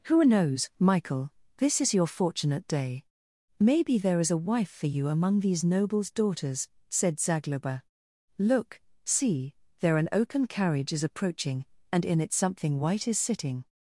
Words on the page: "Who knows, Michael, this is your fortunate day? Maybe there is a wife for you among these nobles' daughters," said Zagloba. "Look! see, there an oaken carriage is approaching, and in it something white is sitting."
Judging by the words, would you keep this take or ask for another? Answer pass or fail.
pass